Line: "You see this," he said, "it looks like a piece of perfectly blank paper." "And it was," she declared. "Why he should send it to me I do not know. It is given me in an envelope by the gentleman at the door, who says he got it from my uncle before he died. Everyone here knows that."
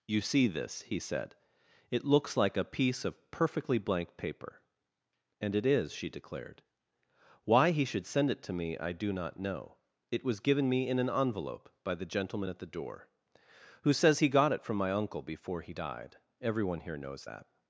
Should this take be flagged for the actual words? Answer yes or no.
yes